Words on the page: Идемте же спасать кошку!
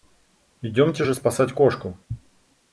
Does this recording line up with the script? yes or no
yes